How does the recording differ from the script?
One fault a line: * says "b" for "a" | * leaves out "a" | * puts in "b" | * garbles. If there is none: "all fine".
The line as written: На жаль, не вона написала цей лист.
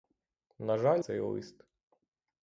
* leaves out "не вона написала"